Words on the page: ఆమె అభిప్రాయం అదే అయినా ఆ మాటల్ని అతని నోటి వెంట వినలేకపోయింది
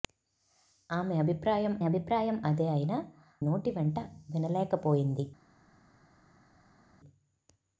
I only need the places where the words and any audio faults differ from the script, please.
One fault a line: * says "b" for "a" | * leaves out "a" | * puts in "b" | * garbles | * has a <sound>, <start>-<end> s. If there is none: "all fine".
* puts in "అభిప్రాయం"
* leaves out "ఆ మాటల్ని అతని"